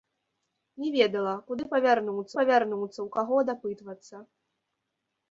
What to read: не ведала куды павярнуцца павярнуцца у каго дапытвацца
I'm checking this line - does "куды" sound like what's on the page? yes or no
yes